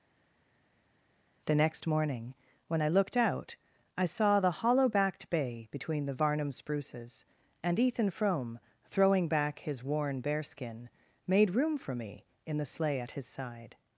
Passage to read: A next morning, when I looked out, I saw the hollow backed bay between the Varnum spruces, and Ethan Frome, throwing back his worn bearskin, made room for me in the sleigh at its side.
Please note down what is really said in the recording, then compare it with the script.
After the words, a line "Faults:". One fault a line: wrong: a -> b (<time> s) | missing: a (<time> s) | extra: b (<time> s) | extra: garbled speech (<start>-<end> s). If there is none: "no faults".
The next morning, when I looked out, I saw the hollow backed bay between the Varnum spruces, and Ethan Frome, throwing back his worn bearskin, made room for me in the sleigh at his side.
Faults:
wrong: A -> The (1.5 s)
wrong: its -> his (13.1 s)